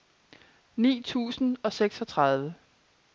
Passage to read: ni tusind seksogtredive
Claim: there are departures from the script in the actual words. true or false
true